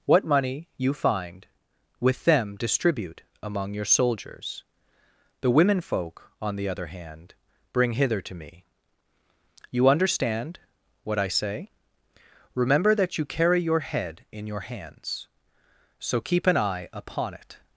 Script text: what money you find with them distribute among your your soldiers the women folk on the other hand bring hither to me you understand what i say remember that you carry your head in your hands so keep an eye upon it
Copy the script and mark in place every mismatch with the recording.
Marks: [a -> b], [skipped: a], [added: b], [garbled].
what money you find with them distribute among your [skipped: your] soldiers the women folk on the other hand bring hither to me you understand what i say remember that you carry your head in your hands so keep an eye upon it